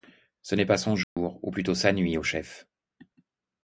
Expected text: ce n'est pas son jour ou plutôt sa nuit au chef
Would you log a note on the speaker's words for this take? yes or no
no